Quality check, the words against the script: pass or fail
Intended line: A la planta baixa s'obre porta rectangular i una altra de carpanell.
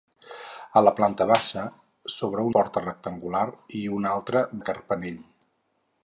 pass